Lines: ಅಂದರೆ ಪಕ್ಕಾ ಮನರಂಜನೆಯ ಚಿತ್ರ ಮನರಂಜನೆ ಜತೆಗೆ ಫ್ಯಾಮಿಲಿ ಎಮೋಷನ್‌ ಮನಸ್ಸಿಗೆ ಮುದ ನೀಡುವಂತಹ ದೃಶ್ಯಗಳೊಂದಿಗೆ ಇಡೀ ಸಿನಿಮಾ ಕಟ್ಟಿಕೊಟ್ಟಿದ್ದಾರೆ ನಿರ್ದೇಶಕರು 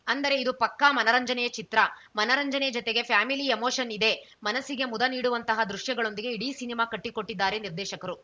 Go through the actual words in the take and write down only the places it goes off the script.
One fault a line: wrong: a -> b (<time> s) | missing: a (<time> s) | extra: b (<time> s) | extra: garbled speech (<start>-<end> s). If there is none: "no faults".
extra: ಇದು (0.3 s)
extra: ಇದೆ (3.9 s)